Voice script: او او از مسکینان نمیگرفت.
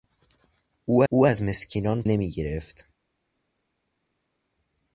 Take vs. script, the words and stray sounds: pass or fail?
pass